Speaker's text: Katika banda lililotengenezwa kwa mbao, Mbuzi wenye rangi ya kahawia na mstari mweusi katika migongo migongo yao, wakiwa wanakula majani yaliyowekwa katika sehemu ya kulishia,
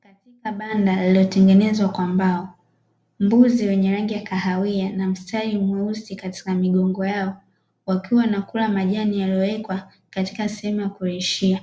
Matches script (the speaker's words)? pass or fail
fail